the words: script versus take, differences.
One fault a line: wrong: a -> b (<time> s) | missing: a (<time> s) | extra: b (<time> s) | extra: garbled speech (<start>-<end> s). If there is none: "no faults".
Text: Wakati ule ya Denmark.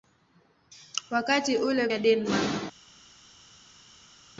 no faults